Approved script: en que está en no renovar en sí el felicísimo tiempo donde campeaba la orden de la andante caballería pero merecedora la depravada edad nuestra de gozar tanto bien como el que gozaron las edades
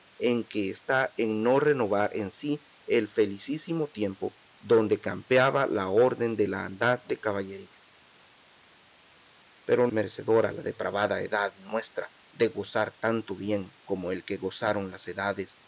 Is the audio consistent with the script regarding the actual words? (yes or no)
yes